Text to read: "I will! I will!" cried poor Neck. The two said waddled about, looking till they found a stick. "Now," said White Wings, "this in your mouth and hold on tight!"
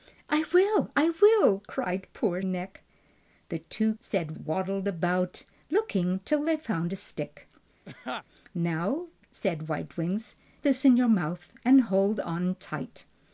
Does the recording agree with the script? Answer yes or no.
yes